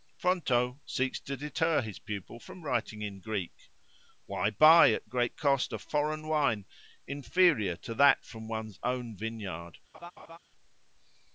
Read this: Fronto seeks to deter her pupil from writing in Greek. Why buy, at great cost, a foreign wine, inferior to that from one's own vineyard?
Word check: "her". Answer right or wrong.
wrong